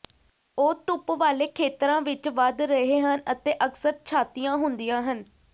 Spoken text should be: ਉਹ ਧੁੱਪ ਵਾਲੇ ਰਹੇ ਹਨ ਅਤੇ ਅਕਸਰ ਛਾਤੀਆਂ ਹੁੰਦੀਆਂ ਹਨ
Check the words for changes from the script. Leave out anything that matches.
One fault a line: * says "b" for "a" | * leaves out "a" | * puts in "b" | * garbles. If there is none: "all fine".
* puts in "ਖੇਤਰਾਂ ਵਿੱਚ ਵਧ"